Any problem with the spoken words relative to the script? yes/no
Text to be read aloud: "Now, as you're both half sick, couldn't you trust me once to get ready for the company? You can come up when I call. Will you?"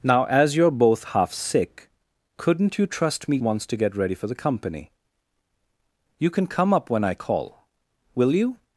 no